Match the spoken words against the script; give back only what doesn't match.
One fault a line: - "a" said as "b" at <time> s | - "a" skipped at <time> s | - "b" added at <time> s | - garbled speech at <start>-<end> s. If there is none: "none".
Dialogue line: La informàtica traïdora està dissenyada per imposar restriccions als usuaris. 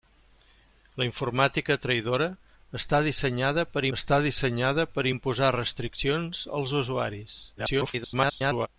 - "està dissenyada per" added at 4.0 s
- garbled speech at 7.6-8.7 s